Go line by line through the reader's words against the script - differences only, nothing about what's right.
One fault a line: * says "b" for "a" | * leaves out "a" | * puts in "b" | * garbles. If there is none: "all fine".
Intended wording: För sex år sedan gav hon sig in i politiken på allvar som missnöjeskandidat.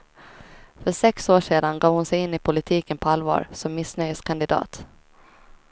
all fine